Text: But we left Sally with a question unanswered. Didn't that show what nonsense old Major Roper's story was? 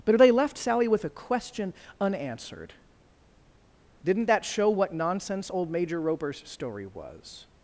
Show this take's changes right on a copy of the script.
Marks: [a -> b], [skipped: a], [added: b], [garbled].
But [we -> they] left Sally with a question unanswered. Didn't that show what nonsense old Major Roper's story was?